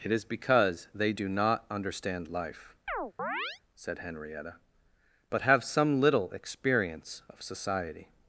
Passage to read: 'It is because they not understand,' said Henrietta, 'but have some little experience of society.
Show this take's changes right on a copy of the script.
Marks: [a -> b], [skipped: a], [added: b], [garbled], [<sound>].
'It is because they [added: do] not understand,' [added: life] [chirp] said Henrietta, 'but have some little experience of society.